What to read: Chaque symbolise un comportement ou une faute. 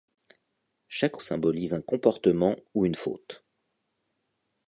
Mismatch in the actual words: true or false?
false